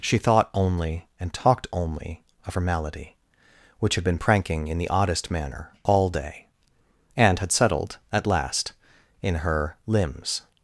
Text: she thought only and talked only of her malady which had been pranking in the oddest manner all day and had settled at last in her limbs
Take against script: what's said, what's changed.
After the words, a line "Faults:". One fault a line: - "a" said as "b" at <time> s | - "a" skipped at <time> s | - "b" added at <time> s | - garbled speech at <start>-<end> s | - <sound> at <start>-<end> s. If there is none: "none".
she thought only and talked only of her malady which had been pranking in the oddest manner all day and had settled at last in her limbs
Faults:
none